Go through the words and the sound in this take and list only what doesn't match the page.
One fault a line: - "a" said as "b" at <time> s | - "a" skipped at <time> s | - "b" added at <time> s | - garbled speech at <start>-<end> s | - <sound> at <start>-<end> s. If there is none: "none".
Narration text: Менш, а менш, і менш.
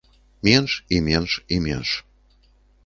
- "а" said as "і" at 0.9 s